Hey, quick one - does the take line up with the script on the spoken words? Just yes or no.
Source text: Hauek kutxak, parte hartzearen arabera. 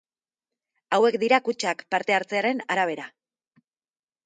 no